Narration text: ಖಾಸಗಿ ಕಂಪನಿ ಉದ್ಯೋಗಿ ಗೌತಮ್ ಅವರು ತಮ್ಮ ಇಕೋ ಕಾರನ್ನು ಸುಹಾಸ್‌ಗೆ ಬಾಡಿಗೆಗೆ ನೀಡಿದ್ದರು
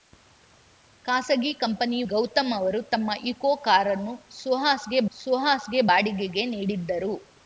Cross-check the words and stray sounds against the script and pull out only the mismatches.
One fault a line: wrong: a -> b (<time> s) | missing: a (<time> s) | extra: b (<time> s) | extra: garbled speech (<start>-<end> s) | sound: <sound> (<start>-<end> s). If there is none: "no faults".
missing: ಉದ್ಯೋಗಿ (2.0 s)
extra: ಸುಹಾಸ್‌ಗೆ (5.2 s)